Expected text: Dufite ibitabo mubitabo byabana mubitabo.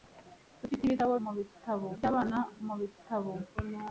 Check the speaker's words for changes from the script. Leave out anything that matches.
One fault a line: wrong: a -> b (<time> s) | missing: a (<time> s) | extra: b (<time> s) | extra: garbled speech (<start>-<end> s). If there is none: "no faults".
no faults